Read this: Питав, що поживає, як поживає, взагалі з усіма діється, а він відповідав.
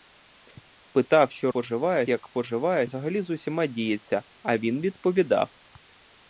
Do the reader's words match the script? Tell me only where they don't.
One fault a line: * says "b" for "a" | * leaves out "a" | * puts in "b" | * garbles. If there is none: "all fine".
all fine